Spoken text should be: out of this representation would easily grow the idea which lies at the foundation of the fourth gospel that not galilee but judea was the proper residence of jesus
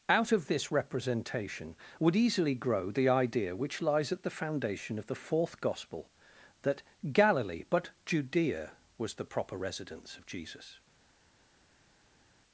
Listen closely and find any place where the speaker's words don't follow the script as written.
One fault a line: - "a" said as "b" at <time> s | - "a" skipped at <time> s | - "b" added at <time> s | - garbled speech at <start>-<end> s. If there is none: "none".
- "not" skipped at 6.8 s